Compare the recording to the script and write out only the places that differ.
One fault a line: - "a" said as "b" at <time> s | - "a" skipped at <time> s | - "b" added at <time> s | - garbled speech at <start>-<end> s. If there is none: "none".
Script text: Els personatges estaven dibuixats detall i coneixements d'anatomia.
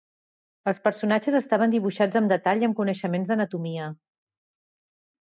- "amb" added at 2.2 s
- "amb" added at 2.7 s